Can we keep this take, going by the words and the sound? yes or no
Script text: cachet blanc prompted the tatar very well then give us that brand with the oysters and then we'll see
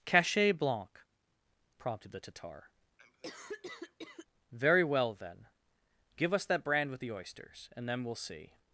no